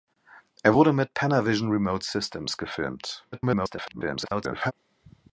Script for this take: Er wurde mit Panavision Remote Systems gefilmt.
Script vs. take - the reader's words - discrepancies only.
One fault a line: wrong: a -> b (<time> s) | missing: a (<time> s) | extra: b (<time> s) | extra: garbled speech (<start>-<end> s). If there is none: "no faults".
extra: garbled speech (3.3-4.7 s)